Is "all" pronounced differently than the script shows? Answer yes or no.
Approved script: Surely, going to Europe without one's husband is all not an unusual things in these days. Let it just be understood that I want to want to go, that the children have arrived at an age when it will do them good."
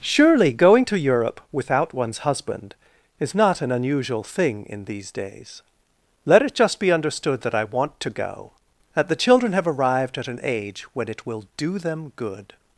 yes